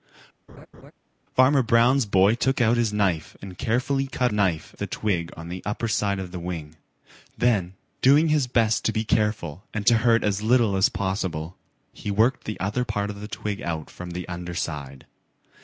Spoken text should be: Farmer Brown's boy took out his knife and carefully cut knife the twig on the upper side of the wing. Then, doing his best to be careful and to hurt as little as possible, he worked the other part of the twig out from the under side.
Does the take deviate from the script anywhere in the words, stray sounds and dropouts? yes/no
yes